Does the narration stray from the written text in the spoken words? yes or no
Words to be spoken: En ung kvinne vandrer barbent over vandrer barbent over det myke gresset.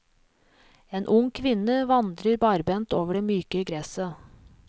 yes